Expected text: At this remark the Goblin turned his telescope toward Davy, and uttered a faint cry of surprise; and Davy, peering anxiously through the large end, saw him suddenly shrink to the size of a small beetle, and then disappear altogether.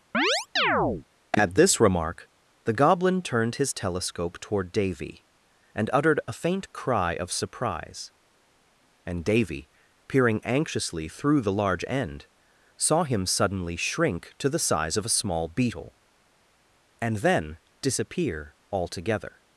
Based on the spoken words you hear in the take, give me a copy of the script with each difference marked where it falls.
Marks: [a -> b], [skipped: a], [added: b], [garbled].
At this remark the Goblin turned his telescope toward Davy, and uttered a faint cry of surprise; and Davy, peering anxiously through the large end, saw him suddenly shrink to the size of a small beetle, and then disappear altogether.